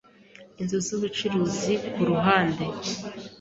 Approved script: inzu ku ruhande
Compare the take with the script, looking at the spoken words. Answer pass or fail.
fail